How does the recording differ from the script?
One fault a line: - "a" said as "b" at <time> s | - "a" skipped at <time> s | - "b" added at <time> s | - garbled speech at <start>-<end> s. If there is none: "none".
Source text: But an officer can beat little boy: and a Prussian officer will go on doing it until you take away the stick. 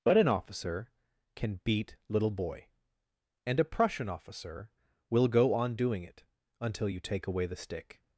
none